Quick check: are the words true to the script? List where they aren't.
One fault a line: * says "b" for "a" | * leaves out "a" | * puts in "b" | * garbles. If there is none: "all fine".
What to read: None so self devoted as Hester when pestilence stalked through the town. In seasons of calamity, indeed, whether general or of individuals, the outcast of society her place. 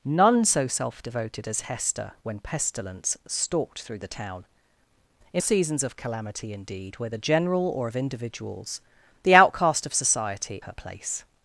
all fine